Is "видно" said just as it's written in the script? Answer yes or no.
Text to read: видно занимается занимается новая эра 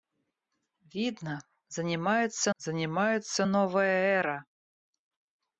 yes